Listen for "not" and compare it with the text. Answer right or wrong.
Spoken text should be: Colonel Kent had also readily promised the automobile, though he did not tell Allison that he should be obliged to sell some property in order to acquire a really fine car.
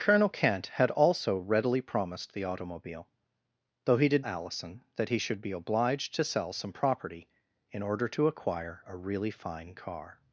wrong